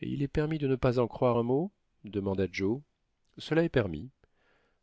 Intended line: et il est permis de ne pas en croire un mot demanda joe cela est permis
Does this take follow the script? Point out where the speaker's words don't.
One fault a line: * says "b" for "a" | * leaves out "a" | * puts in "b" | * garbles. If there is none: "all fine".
all fine